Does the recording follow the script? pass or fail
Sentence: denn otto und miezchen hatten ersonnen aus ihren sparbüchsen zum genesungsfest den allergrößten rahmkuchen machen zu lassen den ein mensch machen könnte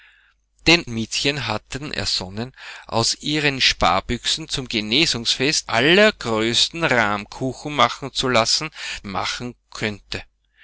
fail